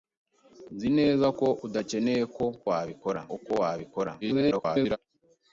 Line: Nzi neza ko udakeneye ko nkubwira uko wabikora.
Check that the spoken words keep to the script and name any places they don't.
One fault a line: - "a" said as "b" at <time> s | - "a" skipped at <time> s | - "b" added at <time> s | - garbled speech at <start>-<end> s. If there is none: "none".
- "nkubwira" said as "wabikora" at 2.7 s
- garbled speech at 4.2-5.0 s